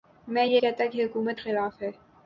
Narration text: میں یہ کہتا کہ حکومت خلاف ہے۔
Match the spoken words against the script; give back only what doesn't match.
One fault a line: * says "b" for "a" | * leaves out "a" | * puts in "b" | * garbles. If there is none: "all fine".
all fine